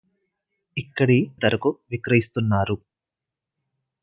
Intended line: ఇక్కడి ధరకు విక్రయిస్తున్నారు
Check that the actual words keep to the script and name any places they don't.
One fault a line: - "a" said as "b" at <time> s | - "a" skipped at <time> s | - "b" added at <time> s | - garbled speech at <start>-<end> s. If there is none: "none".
none